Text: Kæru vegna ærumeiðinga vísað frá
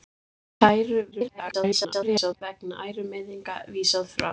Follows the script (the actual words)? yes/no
no